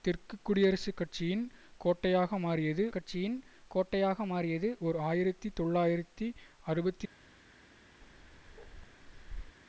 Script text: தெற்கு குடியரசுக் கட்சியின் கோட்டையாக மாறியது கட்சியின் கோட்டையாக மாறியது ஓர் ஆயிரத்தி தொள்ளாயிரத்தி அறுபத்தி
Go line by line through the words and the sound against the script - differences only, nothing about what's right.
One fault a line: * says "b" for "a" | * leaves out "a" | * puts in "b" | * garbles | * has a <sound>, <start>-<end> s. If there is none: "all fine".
* has a bark, 8.0-9.6 s